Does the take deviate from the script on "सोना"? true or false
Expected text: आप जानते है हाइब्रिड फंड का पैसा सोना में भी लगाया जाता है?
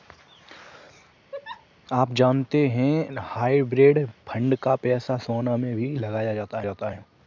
false